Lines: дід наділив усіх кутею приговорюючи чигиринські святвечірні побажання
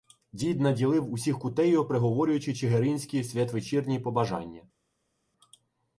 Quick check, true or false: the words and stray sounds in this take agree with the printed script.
true